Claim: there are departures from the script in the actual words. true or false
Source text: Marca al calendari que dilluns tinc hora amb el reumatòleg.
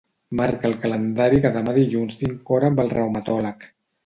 true